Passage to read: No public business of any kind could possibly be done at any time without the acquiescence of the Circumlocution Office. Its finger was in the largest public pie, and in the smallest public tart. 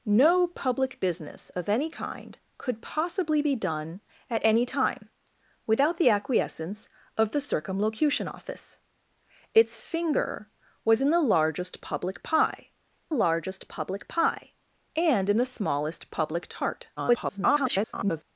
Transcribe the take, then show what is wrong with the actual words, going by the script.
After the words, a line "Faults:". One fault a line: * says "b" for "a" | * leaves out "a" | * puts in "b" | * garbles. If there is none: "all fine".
No public business of any kind could possibly be done at any time without the acquiescence of the Circumlocution Office. Its finger was in the largest public pie largest public pie, and in the smallest public tart. [garbled]
Faults:
* puts in "largest public pie"
* garbles